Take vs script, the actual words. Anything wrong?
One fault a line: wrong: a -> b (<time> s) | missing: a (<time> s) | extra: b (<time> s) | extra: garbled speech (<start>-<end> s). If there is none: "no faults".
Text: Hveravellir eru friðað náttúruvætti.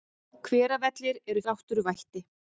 missing: friðað (1.4 s)